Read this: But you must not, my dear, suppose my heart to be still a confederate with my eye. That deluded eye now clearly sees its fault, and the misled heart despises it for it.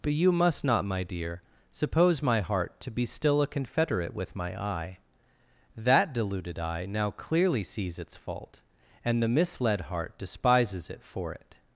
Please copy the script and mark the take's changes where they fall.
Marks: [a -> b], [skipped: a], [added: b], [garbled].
But you must not, my dear, suppose my heart to be still a confederate with my eye. That deluded eye now clearly sees its fault, and the misled heart despises it for it.